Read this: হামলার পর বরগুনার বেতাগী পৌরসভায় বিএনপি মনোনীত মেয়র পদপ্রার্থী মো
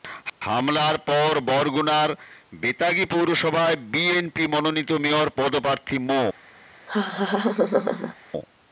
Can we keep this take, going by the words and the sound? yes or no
no